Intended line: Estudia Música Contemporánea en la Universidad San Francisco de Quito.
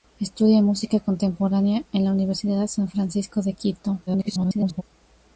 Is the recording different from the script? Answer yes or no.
yes